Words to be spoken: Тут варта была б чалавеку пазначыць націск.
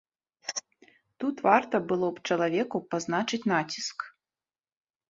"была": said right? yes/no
no